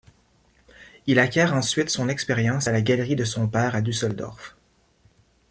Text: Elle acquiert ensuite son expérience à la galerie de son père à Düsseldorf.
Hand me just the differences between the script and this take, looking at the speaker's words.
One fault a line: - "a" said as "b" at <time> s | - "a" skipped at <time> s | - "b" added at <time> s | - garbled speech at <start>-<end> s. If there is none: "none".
- "Elle" said as "Il" at 1.1 s